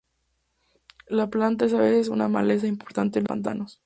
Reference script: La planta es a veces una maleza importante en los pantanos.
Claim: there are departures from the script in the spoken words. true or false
true